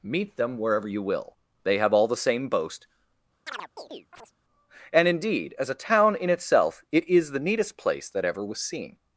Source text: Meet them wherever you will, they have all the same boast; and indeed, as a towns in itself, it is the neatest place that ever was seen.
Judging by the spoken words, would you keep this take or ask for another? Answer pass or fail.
fail